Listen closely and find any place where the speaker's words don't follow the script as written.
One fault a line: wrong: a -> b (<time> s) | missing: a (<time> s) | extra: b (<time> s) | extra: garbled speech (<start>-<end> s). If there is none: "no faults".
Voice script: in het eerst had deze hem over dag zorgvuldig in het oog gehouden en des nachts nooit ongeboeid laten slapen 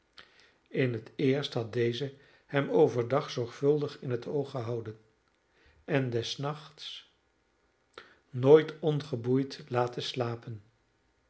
no faults